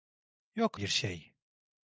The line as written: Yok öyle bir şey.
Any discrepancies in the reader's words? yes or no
yes